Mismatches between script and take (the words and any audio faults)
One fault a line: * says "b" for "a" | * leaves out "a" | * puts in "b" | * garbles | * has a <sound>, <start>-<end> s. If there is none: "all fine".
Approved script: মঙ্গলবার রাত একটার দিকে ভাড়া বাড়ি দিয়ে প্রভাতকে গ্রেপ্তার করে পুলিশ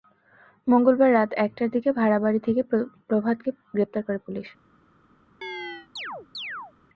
* says "থেকে" for "দিয়ে"
* has a chirp, 5.4-6.7 s